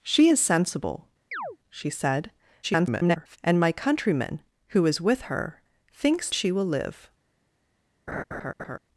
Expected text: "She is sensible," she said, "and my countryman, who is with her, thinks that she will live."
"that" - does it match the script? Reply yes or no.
no